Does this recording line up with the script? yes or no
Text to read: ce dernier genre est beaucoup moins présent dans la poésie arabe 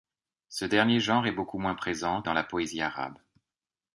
yes